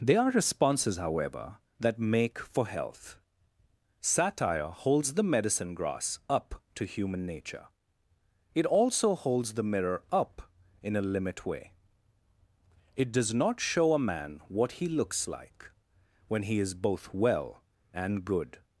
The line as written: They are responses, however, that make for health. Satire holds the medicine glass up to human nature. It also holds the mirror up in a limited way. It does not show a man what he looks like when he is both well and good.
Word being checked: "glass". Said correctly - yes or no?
no